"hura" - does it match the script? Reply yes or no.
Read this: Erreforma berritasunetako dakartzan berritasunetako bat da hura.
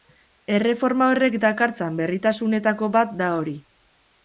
no